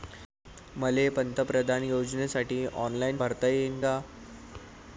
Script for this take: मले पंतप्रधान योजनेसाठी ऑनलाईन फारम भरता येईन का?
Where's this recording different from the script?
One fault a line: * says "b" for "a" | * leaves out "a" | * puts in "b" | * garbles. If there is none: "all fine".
* leaves out "फारम"